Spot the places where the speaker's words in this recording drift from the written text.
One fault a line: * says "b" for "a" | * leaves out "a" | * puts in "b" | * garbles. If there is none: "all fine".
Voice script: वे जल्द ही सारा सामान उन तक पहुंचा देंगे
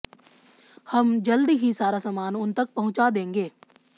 * says "हम" for "वे"